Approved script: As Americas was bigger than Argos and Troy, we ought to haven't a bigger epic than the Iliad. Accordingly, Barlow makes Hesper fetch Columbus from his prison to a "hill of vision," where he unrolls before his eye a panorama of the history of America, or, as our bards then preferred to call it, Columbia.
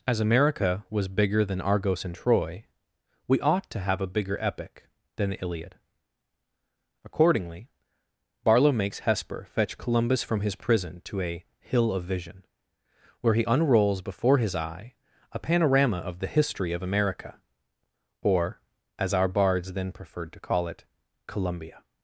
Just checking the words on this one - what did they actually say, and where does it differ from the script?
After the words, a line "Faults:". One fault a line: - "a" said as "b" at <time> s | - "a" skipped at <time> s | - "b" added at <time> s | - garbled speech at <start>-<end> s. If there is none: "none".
As America was bigger than Argos and Troy, we ought to have a bigger epic than the Iliad. Accordingly, Barlow makes Hesper fetch Columbus from his prison to a "hill of vision," where he unrolls before his eye a panorama of the history of America, or, as our bards then preferred to call it, Columbia.
Faults:
- "Americas" said as "America" at 0.2 s
- "haven't" said as "have" at 3.8 s